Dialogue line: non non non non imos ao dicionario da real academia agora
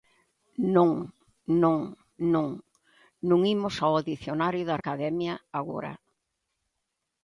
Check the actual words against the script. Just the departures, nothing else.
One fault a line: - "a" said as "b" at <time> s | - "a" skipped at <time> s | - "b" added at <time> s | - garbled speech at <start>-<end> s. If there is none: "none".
- "real" skipped at 4.8 s